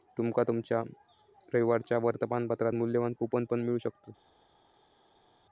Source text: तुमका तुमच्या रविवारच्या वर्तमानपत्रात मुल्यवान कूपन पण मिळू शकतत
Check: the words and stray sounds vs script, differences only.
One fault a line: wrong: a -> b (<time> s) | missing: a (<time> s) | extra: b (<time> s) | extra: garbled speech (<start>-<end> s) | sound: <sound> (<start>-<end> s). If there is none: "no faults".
no faults